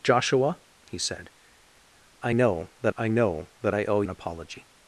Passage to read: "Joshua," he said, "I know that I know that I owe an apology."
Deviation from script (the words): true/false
false